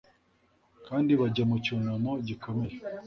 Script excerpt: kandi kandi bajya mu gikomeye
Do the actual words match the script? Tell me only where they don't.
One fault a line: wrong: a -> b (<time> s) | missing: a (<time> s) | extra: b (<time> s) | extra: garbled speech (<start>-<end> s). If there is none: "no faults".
missing: kandi (1.1 s)
extra: cyunamo (1.6 s)